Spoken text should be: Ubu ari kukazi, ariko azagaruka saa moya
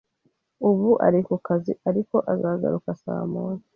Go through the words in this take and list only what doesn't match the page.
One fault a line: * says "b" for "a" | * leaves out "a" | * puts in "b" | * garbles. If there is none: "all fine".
all fine